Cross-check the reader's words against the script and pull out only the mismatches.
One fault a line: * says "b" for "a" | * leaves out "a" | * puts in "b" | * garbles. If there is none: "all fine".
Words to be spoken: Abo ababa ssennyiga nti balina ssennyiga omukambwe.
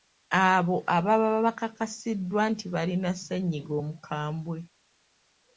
* says "bakakasiddwa" for "ssennyiga"